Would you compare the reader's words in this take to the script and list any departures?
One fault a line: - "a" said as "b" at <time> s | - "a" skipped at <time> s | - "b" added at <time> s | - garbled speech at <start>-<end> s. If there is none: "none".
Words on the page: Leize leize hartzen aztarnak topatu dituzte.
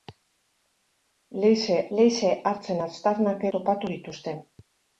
none